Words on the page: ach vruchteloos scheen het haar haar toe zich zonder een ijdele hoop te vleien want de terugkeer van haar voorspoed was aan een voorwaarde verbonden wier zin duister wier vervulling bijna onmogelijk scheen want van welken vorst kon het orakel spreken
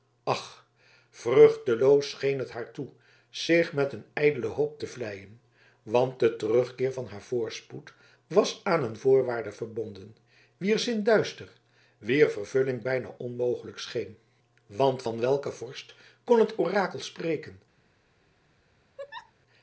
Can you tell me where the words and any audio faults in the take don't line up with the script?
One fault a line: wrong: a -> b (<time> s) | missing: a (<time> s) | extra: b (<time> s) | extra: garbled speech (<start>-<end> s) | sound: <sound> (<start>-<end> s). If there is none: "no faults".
missing: haar (2.7 s)
wrong: zonder -> met (3.7 s)
sound: laugh (19.0-19.3 s)